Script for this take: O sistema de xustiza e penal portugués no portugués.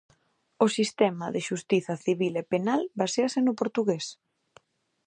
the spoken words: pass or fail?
fail